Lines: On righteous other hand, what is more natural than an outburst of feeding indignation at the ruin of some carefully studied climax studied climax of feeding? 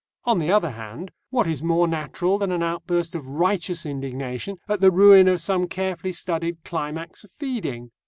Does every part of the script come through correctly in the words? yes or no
no